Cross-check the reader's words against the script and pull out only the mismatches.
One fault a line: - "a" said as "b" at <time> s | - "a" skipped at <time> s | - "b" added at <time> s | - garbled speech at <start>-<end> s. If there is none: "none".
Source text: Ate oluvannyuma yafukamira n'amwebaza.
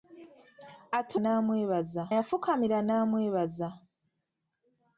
- "oluvannyuma" said as "n'amwebaza" at 1.2 s